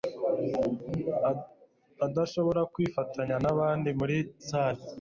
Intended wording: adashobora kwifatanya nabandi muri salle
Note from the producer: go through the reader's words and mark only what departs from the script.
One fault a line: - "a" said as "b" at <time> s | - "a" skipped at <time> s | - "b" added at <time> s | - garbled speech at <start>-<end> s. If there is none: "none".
none